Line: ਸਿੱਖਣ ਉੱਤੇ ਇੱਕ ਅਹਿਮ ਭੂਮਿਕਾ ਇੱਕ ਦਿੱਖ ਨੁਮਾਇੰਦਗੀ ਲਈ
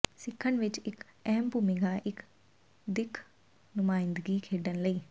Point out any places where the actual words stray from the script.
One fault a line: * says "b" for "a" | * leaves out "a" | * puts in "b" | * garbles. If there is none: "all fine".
* says "ਵਿੱਚ" for "ਉੱਤੇ"
* puts in "ਖੇਡਣ"